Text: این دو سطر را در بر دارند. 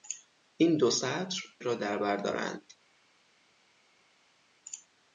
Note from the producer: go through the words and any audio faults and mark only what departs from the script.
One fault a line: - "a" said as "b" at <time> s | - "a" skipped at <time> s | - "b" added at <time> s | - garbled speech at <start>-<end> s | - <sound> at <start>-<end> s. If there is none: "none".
none